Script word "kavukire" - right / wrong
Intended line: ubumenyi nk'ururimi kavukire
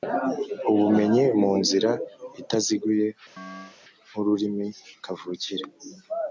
right